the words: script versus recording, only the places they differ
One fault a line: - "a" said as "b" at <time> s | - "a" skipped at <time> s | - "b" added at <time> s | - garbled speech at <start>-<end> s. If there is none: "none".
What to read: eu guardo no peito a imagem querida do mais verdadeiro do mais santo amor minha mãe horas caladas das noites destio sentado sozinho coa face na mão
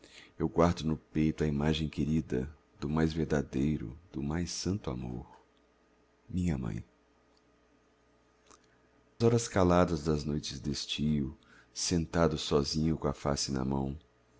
none